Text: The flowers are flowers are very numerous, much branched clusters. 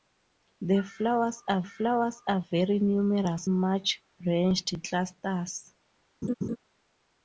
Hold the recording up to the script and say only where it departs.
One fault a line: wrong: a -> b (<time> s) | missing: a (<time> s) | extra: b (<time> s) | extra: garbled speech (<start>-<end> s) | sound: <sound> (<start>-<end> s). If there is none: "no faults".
sound: laugh (6.2-6.6 s)